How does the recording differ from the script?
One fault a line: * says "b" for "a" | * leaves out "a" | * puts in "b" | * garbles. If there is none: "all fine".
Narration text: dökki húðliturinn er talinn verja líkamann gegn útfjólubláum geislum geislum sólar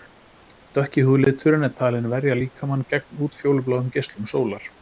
* leaves out "geislum"